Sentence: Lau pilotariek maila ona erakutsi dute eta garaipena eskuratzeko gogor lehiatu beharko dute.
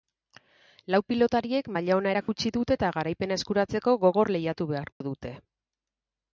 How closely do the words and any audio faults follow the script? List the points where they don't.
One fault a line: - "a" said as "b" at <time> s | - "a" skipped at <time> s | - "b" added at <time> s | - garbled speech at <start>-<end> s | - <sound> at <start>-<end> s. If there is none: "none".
- dropout at 2.2-2.3 s
- dropout at 4.9-5.0 s